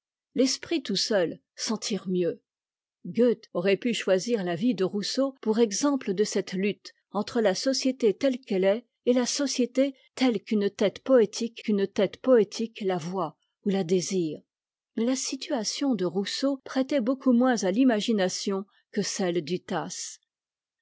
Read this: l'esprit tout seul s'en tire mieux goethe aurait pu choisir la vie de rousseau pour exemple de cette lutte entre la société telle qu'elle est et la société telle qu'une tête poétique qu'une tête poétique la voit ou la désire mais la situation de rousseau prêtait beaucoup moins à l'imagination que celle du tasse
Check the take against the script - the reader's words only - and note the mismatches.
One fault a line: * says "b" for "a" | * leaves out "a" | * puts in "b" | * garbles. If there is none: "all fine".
all fine